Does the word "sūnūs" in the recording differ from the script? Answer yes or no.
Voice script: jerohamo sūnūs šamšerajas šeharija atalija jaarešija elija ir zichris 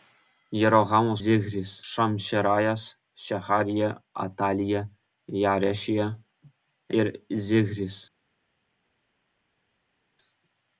yes